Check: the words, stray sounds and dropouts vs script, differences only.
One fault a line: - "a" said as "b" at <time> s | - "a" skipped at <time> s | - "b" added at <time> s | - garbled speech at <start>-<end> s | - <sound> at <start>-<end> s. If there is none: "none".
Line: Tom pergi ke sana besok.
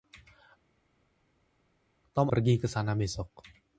none